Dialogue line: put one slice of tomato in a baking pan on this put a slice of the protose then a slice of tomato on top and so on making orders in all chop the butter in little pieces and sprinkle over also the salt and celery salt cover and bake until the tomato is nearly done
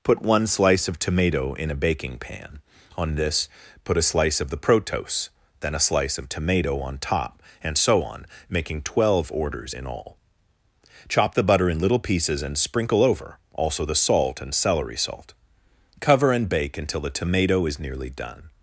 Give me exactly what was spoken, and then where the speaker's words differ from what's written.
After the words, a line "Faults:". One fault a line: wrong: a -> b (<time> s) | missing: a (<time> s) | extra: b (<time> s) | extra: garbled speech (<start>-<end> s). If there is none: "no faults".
put one slice of tomato in a baking pan on this put a slice of the protose then a slice of tomato on top and so on making twelve orders in all chop the butter in little pieces and sprinkle over also the salt and celery salt cover and bake until the tomato is nearly done
Faults:
extra: twelve (8.8 s)